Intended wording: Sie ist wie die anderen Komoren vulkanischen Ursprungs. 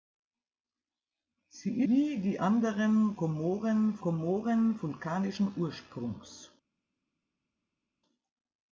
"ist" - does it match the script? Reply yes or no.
no